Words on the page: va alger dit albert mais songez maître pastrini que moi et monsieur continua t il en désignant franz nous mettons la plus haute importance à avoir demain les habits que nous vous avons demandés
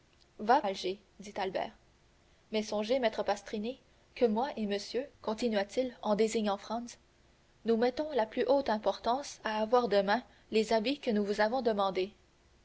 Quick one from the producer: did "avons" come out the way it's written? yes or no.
yes